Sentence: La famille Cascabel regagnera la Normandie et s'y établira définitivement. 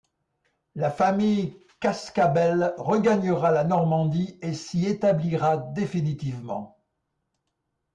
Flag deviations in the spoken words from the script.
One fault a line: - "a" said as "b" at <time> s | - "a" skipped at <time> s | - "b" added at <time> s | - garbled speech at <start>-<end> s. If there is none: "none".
none